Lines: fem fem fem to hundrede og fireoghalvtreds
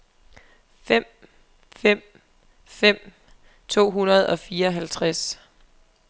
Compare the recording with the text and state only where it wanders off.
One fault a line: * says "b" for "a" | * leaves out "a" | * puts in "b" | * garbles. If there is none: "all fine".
all fine